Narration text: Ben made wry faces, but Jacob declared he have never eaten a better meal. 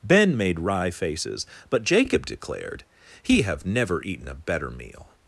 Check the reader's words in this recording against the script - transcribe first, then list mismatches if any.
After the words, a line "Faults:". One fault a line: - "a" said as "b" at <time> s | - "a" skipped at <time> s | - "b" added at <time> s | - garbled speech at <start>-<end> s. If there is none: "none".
Ben made wry faces, but Jacob declared he have never eaten a better meal.
Faults:
none